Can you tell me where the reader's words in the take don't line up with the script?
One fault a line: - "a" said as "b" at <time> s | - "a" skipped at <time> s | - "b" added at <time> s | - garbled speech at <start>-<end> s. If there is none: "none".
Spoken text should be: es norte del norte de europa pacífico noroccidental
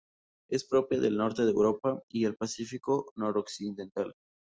- "norte" said as "propia" at 0.7 s
- "y el" added at 2.1 s